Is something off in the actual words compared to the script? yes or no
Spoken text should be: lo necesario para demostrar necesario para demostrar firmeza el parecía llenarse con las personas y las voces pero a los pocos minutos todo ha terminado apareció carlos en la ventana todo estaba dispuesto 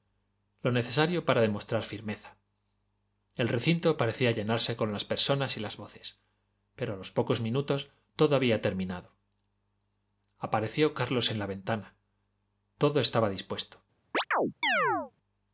yes